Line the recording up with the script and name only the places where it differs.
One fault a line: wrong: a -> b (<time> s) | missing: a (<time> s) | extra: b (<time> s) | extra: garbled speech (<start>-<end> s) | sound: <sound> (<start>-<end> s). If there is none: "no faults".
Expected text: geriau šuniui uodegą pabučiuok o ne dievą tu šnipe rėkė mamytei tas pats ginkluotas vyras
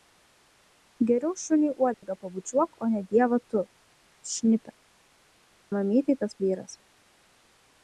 sound: dropout (1.9-2.0 s)
missing: rėkė (4.7 s)
missing: pats ginkluotas (6.4 s)